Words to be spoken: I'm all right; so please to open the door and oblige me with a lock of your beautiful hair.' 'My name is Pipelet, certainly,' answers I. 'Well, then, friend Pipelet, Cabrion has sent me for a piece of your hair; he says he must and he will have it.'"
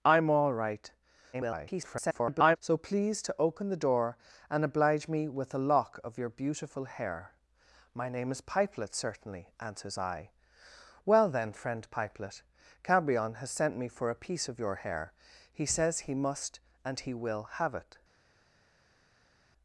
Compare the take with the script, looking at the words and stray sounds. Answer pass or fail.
fail